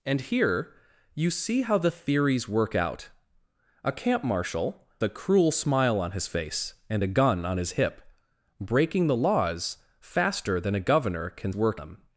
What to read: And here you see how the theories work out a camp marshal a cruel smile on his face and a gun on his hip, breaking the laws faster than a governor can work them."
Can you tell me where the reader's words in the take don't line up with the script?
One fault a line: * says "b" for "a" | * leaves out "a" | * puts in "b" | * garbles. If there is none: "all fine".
all fine